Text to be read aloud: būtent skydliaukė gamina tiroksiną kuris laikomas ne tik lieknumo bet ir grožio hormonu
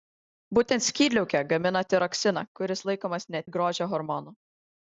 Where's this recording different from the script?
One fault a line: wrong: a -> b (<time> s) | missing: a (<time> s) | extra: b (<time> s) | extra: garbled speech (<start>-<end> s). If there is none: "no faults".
missing: tik lieknumo bet (3.5 s)